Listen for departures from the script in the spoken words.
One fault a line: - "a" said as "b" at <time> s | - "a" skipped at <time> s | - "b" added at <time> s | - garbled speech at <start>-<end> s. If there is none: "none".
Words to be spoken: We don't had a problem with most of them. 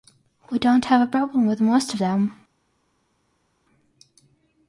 - "had" said as "have" at 0.8 s